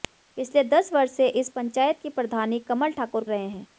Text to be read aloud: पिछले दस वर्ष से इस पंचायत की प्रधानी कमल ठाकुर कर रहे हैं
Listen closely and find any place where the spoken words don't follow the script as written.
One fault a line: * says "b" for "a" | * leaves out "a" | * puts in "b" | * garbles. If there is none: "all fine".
* leaves out "कर"